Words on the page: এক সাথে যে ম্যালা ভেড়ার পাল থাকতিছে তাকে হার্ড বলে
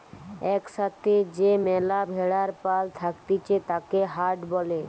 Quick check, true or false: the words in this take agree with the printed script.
true